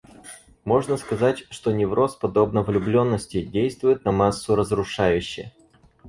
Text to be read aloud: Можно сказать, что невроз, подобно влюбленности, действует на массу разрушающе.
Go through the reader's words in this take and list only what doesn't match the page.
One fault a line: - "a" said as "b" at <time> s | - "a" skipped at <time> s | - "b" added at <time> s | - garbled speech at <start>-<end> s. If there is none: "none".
none